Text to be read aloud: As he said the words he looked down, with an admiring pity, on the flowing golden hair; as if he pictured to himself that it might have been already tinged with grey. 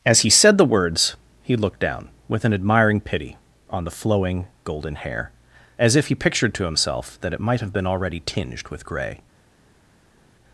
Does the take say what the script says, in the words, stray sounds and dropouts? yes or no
yes